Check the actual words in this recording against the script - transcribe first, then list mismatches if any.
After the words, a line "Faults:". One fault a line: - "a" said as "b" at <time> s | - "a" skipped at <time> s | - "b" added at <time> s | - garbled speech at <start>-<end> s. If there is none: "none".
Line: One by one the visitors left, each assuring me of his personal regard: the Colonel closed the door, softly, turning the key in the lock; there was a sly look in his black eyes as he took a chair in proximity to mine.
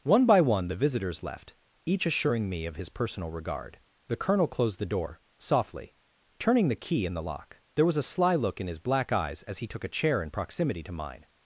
One by one the visitors left, each assuring me of his personal regard: the Colonel closed the door, softly, turning the key in the lock; there was a sly look in his black eyes as he took a chair in proximity to mine.
Faults:
none